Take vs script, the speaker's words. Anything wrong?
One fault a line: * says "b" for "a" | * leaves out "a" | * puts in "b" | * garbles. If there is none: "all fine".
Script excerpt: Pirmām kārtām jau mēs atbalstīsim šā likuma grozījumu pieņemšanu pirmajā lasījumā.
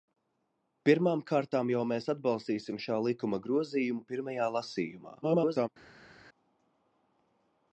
* leaves out "pieņemšanu"
* garbles